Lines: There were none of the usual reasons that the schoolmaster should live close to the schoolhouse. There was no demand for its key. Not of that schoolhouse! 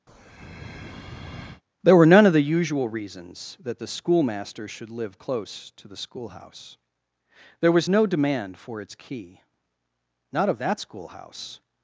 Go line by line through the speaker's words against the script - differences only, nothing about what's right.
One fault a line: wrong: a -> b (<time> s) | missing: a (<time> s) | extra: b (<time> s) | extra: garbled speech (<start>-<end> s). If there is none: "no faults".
no faults